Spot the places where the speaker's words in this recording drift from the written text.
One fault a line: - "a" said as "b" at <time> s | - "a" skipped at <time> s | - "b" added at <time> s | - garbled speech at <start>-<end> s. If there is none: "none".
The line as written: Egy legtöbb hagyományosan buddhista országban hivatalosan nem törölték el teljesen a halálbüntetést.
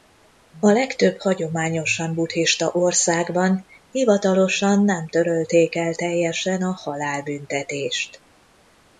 - "Egy" said as "A" at 0.6 s